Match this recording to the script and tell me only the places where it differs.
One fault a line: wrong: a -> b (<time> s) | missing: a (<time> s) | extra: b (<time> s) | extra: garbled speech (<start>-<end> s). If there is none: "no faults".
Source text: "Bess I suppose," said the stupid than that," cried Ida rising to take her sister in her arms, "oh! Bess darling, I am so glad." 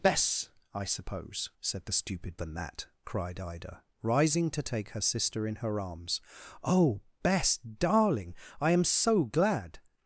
no faults